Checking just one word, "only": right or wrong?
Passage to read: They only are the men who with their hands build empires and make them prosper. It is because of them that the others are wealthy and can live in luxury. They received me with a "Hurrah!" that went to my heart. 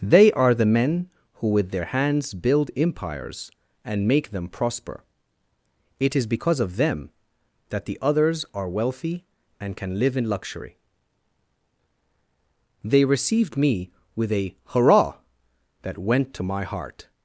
wrong